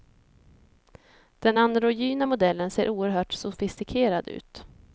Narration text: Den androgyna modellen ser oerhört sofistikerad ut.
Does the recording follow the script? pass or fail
pass